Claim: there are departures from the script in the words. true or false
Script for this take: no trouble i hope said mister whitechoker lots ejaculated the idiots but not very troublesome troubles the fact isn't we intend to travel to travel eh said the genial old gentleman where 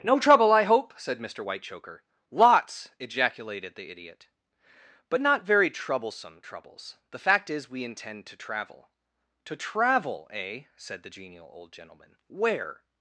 true